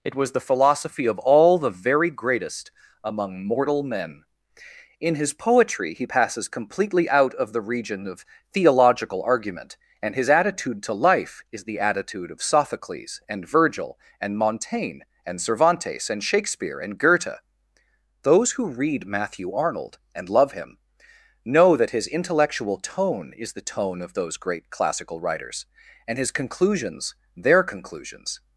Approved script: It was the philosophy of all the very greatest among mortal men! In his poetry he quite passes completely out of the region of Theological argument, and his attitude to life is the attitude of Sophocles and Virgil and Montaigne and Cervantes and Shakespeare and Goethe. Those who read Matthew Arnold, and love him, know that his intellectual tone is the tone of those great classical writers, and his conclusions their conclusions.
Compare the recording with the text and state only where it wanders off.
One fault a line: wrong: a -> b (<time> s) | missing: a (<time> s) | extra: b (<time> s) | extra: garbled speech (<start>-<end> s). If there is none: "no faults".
missing: quite (6.1 s)